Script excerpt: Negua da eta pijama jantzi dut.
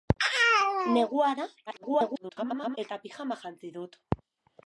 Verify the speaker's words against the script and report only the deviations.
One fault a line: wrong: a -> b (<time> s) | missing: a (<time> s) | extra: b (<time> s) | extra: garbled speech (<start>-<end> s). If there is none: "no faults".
extra: garbled speech (1.7-2.8 s)